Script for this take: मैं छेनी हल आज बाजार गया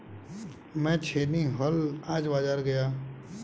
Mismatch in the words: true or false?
false